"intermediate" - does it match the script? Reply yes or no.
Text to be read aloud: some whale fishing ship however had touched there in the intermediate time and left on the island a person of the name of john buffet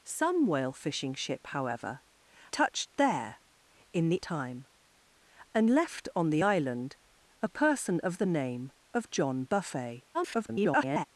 no